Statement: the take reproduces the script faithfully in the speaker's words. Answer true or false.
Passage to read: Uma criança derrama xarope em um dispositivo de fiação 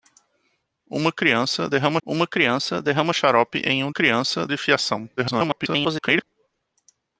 false